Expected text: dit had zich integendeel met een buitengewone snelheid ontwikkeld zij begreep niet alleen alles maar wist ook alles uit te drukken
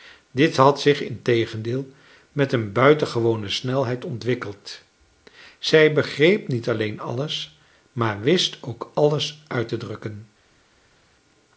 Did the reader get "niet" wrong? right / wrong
right